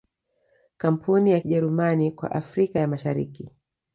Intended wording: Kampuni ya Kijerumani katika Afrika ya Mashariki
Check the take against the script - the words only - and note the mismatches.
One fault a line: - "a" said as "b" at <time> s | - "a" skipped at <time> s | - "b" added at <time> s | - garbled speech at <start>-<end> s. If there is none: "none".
- "katika" said as "kwa" at 2.1 s